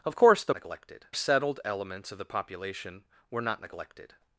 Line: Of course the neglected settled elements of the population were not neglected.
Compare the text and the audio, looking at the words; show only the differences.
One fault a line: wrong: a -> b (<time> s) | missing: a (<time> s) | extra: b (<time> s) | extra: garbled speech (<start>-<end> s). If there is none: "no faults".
no faults